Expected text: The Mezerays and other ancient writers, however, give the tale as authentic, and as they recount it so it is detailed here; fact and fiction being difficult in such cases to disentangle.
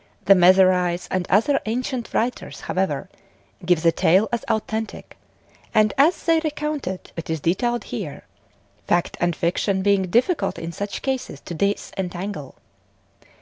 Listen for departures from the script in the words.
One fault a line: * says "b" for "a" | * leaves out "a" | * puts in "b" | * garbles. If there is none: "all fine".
* leaves out "so"